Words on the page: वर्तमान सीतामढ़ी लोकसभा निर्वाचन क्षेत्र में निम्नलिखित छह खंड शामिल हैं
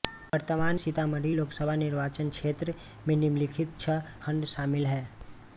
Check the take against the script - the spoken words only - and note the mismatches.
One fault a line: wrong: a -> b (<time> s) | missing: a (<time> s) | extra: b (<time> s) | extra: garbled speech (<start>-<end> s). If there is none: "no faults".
no faults